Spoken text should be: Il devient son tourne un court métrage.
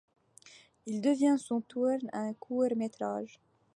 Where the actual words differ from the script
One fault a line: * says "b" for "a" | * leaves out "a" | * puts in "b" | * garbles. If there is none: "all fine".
all fine